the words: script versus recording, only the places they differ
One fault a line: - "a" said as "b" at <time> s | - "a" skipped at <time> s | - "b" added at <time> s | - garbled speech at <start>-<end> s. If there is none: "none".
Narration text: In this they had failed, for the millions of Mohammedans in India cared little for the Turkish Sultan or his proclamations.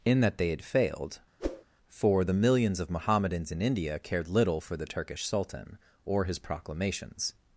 - "this" said as "that" at 0.2 s